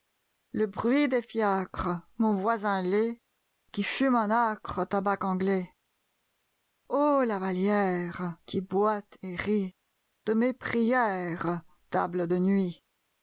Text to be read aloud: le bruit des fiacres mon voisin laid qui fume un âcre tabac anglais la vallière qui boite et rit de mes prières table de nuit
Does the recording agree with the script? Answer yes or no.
no